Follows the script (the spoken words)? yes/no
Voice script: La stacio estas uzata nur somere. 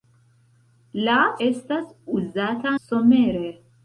no